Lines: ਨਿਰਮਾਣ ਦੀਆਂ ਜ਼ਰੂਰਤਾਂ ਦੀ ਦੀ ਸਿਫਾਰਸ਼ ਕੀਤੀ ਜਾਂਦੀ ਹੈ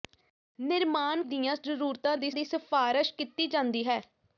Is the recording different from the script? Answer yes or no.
no